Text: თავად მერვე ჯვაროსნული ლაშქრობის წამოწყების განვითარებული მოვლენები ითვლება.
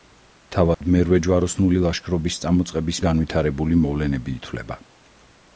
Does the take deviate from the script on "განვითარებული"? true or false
false